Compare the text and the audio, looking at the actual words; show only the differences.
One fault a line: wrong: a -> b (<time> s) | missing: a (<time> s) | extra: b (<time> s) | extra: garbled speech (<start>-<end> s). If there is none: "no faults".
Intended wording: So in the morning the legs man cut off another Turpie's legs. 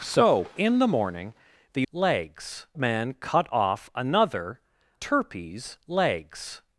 no faults